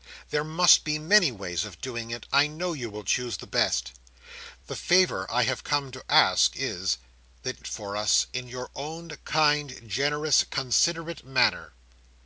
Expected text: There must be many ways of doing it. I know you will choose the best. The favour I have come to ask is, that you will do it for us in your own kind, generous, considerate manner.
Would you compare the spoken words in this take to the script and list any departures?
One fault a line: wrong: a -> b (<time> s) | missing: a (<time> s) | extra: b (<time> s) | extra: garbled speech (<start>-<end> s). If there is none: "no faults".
missing: you will do (7.6 s)